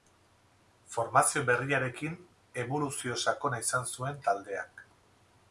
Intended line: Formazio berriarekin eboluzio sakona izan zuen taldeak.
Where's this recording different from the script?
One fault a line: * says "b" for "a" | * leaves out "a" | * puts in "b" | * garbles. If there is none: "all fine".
all fine